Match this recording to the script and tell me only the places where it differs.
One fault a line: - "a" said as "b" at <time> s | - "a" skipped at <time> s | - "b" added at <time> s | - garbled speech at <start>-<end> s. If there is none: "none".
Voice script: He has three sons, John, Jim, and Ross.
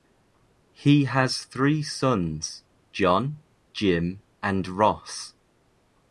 none